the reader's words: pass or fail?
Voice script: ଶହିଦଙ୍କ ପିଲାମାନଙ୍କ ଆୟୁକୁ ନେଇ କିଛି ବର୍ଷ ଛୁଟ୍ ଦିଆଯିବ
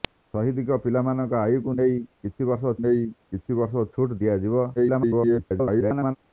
fail